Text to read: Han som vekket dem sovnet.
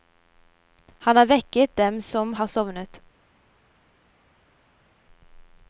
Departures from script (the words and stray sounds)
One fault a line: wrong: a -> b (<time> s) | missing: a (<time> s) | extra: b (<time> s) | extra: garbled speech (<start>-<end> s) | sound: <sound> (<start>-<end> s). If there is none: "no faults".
wrong: som -> har (1.1 s)
extra: som har (2.0 s)